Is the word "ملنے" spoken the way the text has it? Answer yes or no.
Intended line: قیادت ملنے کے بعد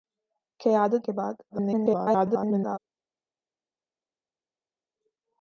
no